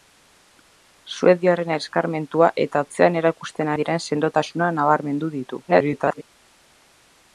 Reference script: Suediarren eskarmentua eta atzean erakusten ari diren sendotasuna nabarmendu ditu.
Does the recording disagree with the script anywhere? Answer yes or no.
yes